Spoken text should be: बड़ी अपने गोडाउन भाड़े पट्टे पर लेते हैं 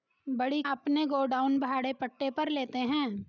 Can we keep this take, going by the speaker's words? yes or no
yes